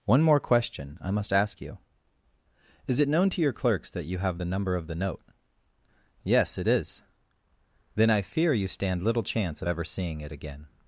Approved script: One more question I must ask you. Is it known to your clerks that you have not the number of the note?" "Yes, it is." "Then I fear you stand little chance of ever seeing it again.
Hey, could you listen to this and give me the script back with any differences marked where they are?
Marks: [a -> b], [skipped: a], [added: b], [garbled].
One more question I must ask you. Is it known to your clerks that you have [skipped: not] the number of the note?" "Yes, it is." "Then I fear you stand little chance of ever seeing it again.